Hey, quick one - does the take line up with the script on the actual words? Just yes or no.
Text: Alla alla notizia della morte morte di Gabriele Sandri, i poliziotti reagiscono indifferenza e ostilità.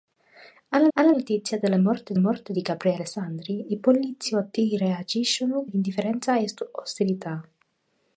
yes